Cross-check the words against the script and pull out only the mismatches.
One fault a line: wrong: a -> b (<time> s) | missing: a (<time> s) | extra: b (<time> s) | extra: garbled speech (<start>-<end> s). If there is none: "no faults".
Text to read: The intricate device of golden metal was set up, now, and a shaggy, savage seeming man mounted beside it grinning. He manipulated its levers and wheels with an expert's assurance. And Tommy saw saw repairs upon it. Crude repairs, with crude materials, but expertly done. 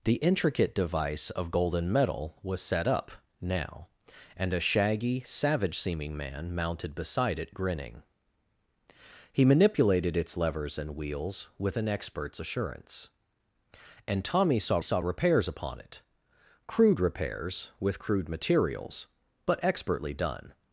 no faults